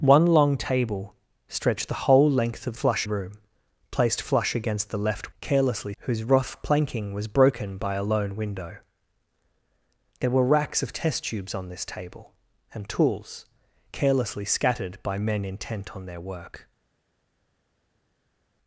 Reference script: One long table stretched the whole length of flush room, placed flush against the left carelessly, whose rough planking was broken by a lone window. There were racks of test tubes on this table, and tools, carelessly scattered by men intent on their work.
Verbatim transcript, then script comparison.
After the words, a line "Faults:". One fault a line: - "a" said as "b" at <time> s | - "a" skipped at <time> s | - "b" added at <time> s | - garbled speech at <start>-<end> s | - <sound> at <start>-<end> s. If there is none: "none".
One long table stretched the whole length of flush room, placed flush against the left carelessly, whose rough planking was broken by a lone window. There were racks of test tubes on this table, and tools, carelessly scattered by men intent on their work.
Faults:
none